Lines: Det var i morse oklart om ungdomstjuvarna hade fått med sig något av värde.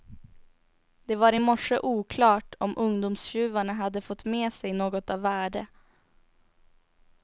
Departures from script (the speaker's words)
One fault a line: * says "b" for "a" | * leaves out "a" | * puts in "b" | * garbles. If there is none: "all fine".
all fine